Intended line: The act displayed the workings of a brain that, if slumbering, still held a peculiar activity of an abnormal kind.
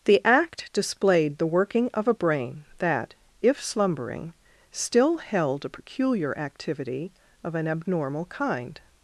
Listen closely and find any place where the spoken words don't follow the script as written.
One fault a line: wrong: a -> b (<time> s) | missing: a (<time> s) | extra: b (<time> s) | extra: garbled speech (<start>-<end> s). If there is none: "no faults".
wrong: workings -> working (1.4 s)